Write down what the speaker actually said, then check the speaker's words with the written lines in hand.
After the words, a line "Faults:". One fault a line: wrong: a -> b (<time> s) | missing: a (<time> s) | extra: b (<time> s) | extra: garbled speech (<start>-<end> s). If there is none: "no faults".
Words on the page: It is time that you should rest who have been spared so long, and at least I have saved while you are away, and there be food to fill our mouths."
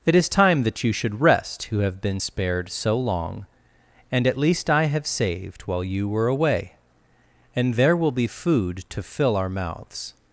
It is time that you should rest who have been spared so long, and at least I have saved while you were away, and there will be food to fill our mouths."
Faults:
wrong: are -> were (6.1 s)
extra: will (8.0 s)